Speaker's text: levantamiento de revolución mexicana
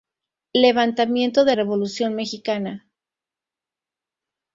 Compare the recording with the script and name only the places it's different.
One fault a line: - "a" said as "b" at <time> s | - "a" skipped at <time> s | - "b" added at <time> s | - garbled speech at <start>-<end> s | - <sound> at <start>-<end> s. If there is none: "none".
none